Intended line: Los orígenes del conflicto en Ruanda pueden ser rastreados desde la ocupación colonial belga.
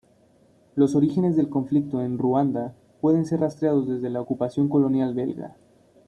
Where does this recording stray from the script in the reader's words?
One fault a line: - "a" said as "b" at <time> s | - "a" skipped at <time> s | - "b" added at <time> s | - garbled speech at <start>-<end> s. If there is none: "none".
none